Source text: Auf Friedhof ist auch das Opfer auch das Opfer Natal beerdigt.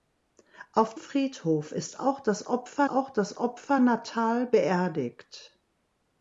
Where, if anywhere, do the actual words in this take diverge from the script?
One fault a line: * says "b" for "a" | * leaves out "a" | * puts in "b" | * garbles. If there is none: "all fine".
all fine